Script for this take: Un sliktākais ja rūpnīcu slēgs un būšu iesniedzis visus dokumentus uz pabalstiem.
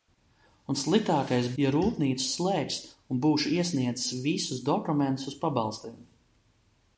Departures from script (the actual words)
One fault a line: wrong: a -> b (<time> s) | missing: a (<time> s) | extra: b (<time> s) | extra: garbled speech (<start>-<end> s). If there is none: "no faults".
no faults